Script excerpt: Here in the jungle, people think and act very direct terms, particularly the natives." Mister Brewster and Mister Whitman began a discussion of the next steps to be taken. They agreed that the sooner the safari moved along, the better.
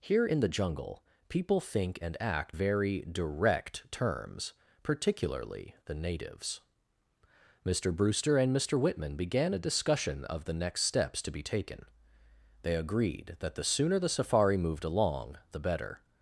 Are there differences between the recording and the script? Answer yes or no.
no